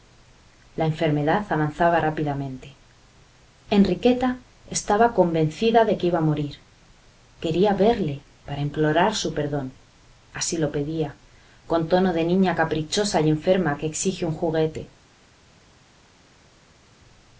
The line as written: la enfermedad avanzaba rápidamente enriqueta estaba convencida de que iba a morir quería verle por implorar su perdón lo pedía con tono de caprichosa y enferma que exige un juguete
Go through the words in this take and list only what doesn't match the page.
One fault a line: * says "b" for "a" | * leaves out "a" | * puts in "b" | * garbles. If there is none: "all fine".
* says "para" for "por"
* puts in "así"
* puts in "niña"